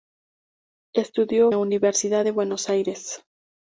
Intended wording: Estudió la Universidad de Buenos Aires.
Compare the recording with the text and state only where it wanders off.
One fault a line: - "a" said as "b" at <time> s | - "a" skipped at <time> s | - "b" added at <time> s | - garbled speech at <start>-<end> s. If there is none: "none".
none